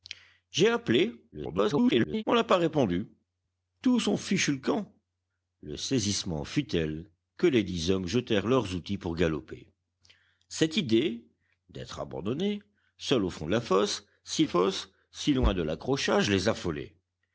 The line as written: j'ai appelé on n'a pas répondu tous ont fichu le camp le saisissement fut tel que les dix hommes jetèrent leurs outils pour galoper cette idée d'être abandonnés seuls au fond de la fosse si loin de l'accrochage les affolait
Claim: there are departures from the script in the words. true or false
true